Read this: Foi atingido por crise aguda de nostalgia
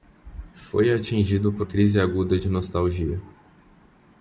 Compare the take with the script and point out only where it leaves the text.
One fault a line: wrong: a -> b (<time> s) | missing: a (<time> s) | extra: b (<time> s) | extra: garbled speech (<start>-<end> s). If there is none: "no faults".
no faults